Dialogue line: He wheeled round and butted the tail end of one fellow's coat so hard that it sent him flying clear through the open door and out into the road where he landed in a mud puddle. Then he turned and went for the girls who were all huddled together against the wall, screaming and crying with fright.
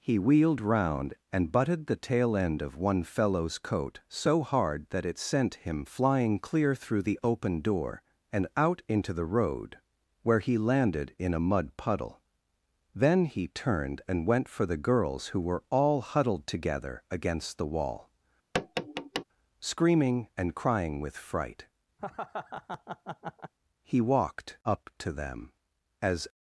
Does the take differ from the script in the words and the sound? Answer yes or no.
yes